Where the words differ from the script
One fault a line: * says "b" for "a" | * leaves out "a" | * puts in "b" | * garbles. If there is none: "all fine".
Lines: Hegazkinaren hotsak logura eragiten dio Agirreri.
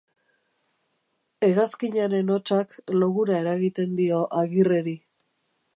all fine